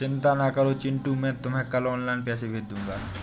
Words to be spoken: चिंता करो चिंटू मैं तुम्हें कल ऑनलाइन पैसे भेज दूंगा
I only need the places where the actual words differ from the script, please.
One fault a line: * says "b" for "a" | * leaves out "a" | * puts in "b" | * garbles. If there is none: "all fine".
* puts in "ना"